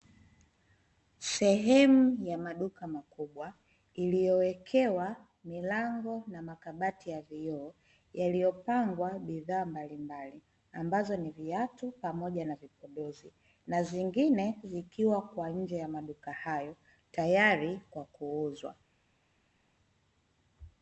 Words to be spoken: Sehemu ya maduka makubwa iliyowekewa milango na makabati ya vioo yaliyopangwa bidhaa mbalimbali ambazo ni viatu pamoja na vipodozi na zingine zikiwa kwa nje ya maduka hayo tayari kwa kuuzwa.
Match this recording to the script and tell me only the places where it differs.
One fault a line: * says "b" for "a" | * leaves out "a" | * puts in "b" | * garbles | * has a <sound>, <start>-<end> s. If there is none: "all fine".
all fine